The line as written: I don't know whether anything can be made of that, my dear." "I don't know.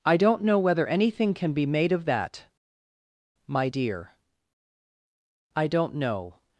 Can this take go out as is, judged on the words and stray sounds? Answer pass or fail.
pass